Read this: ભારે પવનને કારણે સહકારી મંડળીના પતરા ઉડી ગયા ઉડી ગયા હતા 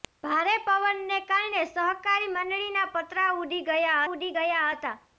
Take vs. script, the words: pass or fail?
pass